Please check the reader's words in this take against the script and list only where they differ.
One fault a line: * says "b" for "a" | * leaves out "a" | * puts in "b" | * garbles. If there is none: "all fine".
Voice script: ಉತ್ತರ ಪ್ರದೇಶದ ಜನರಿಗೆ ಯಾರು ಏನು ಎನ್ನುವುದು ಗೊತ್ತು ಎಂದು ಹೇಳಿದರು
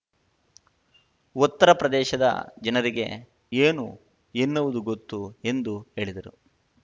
* leaves out "ಯಾರು"